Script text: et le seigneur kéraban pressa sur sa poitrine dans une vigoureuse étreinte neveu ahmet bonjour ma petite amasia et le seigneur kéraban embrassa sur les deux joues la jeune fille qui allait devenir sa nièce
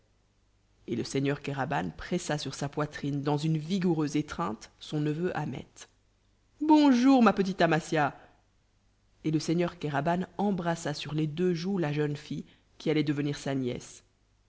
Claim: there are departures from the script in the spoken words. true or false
true